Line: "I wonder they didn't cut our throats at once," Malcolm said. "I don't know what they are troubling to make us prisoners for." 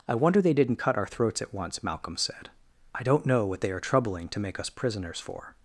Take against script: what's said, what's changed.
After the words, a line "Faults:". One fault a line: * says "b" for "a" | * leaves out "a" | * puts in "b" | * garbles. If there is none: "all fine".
"I wonder they didn't cut our throats at once," Malcolm said. "I don't know what they are troubling to make us prisoners for."
Faults:
all fine